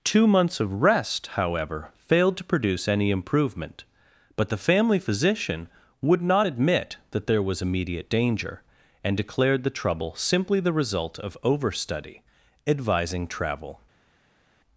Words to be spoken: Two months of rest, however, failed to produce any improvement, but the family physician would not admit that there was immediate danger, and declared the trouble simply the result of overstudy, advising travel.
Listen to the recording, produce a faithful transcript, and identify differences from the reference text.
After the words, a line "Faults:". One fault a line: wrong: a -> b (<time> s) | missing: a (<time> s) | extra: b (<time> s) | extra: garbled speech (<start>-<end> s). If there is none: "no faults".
Two months of rest, however, failed to produce any improvement, but the family physician would not admit that there was immediate danger, and declared the trouble simply the result of overstudy, advising travel.
Faults:
no faults